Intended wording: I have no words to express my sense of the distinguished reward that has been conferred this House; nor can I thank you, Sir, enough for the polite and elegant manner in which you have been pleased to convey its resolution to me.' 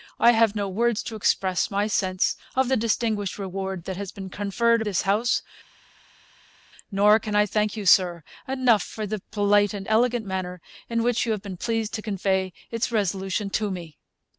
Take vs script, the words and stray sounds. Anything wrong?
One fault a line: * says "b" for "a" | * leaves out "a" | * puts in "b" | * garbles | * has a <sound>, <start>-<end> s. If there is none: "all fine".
all fine